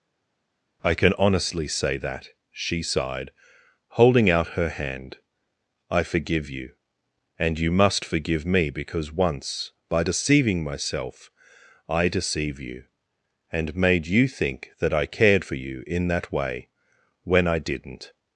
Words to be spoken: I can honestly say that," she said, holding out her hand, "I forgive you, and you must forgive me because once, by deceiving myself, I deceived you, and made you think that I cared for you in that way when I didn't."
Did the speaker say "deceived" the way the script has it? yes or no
no